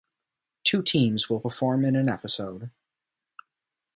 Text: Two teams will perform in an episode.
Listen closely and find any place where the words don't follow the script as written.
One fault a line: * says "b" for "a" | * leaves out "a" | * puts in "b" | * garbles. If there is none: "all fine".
all fine